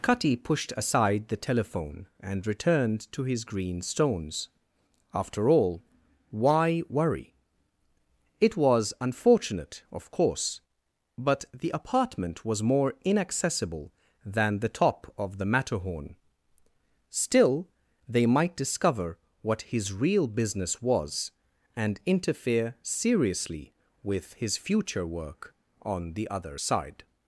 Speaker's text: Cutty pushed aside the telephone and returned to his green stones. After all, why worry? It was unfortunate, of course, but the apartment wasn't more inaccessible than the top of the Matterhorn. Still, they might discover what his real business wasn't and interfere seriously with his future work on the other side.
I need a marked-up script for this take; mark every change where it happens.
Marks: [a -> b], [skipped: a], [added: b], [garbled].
Cutty pushed aside the telephone and returned to his green stones. After all, why worry? It was unfortunate, of course, but the apartment [wasn't -> was] more inaccessible than the top of the Matterhorn. Still, they might discover what his real business [wasn't -> was] and interfere seriously with his future work on the other side.